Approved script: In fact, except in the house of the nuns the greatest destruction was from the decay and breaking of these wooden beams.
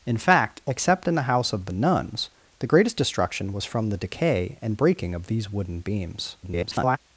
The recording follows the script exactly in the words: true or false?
false